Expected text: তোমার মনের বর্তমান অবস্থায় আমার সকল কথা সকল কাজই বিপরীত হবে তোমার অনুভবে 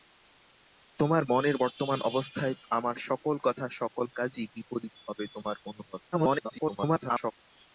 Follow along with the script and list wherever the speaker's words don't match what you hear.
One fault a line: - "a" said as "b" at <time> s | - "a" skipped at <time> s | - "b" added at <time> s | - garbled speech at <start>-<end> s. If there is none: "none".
- garbled speech at 6.1-7.3 s